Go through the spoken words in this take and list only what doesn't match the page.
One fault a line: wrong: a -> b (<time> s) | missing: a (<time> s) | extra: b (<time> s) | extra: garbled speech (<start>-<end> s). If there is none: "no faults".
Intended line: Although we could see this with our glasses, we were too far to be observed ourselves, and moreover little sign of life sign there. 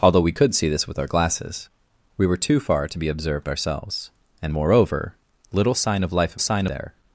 no faults